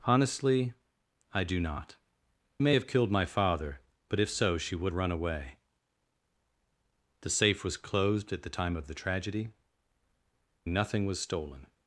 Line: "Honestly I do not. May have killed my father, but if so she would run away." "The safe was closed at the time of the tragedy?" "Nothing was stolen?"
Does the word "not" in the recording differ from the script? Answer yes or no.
no